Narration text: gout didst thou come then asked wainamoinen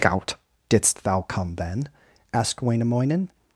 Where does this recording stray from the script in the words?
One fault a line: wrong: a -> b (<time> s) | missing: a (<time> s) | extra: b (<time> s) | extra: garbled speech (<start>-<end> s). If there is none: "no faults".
no faults